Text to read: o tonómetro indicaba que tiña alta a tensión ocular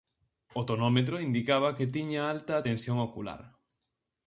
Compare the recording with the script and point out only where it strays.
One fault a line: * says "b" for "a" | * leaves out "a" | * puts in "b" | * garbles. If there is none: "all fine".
all fine